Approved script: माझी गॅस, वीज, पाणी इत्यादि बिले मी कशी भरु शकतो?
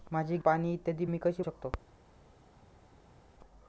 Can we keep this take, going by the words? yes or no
no